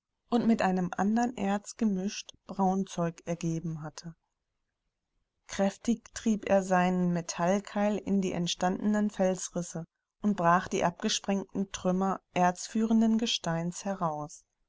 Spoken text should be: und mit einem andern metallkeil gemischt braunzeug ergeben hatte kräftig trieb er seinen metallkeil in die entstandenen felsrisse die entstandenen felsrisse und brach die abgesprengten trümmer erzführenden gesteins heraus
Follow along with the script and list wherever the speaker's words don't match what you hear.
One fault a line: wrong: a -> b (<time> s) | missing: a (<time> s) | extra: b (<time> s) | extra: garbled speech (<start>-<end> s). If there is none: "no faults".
wrong: metallkeil -> erz (1.4 s)
missing: die entstandenen felsrisse (9.8 s)